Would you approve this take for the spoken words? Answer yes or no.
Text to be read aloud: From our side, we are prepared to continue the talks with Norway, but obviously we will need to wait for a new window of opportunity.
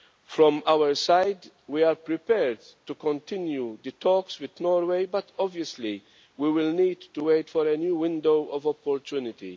yes